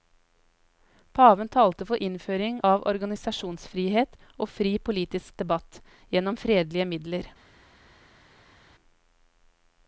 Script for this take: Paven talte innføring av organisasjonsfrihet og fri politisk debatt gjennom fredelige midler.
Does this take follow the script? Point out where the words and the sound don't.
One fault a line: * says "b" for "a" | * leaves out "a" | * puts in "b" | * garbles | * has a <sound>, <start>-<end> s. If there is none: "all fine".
* puts in "for"